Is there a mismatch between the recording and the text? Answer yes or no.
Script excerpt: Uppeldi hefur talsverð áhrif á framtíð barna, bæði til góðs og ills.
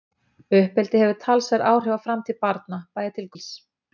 yes